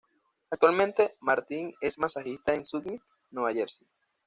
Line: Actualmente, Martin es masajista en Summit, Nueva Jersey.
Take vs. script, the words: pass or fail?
pass